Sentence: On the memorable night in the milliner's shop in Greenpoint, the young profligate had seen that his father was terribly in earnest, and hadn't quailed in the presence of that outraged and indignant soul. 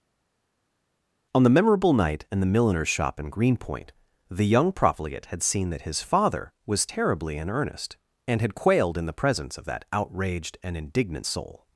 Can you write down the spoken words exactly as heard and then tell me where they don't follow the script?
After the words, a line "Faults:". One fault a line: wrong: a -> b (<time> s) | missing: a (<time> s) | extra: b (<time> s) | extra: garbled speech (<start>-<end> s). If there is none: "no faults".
On the memorable night in the milliner's shop in Greenpoint, the young profligate had seen that his father was terribly in earnest, and had quailed in the presence of that outraged and indignant soul.
Faults:
wrong: hadn't -> had (8.4 s)